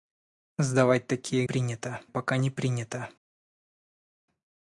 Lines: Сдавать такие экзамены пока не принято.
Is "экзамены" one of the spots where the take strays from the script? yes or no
yes